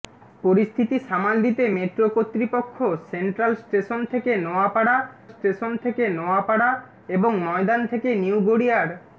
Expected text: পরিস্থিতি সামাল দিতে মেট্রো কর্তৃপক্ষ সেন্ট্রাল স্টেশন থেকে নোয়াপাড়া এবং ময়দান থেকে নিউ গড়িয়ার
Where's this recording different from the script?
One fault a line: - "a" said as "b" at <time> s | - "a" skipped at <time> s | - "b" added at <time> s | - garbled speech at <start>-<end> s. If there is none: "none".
- "স্টেশন থেকে নোয়াপাড়া" added at 5.3 s